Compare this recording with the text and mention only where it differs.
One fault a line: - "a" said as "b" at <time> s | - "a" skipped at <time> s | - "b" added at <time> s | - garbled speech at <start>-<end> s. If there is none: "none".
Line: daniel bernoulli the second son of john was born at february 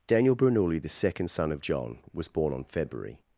- "at" said as "on" at 2.5 s